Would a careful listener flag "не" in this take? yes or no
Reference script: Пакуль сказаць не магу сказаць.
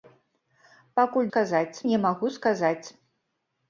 no